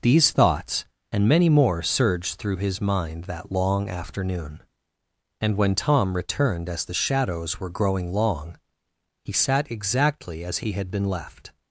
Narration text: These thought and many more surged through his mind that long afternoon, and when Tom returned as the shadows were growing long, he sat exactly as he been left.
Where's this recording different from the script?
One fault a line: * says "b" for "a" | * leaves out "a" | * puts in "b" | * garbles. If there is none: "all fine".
* says "thoughts" for "thought"
* puts in "had"